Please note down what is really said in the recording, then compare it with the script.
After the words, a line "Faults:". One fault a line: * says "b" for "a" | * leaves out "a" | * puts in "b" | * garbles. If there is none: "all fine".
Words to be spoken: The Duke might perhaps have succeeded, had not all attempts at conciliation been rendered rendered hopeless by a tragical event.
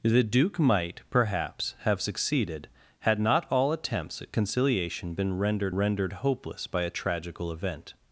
The Duke might perhaps have succeeded, had not all attempts at conciliation been rendered rendered hopeless by a tragical event.
Faults:
all fine